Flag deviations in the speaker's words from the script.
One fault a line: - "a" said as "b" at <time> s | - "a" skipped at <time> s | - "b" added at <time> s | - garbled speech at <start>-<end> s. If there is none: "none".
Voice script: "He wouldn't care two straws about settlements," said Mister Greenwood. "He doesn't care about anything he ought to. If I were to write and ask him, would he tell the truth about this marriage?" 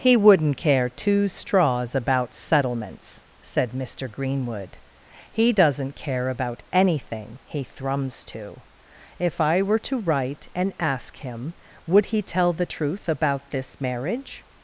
- "ought" said as "thrums" at 7.6 s